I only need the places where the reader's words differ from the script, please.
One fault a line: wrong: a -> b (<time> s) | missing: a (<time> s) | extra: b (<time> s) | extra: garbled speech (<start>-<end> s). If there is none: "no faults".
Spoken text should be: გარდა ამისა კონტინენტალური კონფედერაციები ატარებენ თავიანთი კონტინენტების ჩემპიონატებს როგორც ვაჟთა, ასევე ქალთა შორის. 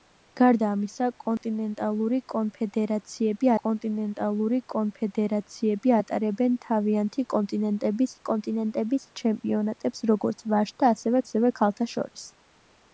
extra: კონტინენტალური კონფედერაციები (3.6 s)
extra: კონტინენტების (8.3 s)
extra: ასევე (11.3 s)